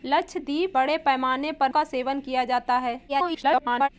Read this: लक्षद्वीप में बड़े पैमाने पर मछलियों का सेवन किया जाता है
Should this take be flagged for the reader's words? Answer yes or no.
yes